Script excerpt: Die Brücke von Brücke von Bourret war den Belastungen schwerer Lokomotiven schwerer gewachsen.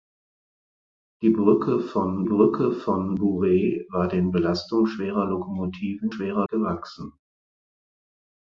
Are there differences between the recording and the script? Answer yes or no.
no